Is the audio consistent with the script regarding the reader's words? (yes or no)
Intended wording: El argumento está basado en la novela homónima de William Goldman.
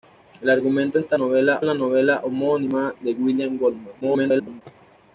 no